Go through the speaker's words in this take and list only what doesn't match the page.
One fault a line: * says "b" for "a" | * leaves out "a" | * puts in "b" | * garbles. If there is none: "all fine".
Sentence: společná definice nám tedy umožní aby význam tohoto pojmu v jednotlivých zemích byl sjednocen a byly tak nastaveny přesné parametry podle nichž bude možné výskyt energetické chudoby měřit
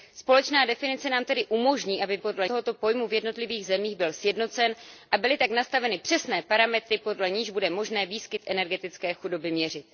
* says "podle" for "význam"